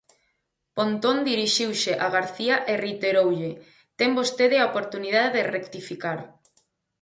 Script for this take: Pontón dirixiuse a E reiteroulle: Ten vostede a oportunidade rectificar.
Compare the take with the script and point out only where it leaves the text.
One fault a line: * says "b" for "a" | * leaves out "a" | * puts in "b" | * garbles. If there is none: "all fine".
* puts in "García"
* puts in "de"